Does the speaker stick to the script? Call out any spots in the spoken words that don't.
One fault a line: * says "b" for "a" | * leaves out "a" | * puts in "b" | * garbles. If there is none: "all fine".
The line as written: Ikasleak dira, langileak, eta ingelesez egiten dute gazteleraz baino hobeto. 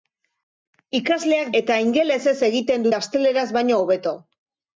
* leaves out "dira langileak"
* leaves out "dute"